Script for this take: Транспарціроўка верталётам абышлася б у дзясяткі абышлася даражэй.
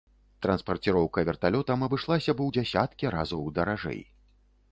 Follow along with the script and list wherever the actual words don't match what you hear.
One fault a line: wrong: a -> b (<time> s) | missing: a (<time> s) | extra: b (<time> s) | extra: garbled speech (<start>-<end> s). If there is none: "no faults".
wrong: абышлася -> разоў (3.2 s)